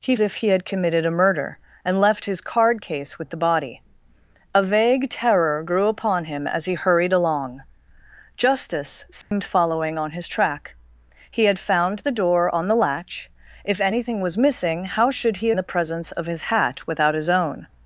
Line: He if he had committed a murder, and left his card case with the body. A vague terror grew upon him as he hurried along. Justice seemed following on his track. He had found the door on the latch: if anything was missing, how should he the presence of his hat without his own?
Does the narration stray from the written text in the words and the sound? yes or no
yes